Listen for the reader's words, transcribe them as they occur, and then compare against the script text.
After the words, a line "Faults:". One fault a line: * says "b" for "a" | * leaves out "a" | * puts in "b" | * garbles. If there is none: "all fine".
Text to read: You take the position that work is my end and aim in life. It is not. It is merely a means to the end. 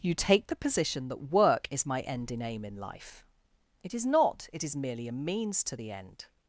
You take the position that work is my end in aim in life. It is not. It is merely a means to the end.
Faults:
* says "in" for "and"